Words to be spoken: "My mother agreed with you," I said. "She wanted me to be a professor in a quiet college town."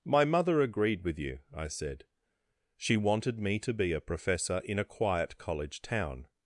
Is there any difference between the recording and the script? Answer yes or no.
no